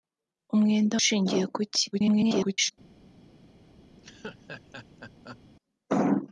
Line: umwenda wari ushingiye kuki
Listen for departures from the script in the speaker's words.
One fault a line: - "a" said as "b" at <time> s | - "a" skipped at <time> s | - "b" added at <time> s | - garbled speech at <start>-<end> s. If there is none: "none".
- "wari" skipped at 0.9 s
- garbled speech at 1.9-2.7 s